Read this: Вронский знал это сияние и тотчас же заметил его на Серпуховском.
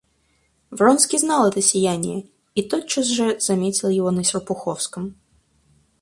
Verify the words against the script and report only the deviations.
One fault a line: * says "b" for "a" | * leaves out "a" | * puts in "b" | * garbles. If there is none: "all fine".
all fine